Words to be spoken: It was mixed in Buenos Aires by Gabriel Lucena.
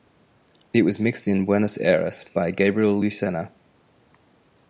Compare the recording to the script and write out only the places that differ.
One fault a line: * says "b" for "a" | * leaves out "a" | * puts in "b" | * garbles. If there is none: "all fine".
all fine